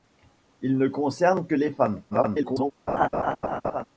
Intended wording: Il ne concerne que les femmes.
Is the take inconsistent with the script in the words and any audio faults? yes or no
yes